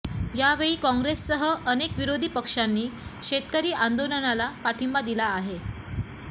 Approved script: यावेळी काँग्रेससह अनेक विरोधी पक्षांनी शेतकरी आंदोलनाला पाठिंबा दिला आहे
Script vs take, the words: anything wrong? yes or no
no